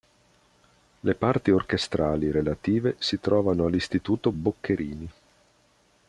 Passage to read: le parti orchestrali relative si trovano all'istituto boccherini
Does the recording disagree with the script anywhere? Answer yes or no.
no